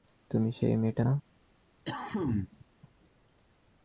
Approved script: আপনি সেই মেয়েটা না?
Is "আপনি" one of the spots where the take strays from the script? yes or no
yes